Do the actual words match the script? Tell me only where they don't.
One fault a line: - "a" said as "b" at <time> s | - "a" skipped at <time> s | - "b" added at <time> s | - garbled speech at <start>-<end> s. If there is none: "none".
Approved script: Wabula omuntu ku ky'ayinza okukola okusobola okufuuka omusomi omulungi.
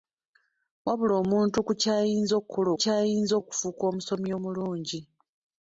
- "okusobola" said as "ky'ayinza" at 2.8 s